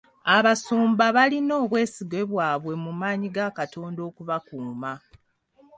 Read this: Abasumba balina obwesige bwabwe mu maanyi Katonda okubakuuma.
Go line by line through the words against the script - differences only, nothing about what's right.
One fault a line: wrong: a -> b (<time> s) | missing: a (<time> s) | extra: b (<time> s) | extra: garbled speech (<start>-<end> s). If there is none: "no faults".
extra: ga (3.4 s)